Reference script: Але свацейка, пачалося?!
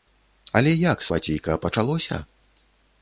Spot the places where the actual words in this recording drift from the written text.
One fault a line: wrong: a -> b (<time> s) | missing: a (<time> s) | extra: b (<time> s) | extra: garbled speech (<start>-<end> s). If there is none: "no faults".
extra: як (0.9 s)